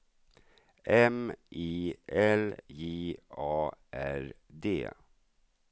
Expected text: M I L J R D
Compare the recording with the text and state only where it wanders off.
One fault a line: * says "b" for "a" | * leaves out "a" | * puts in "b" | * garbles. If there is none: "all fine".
* puts in "A"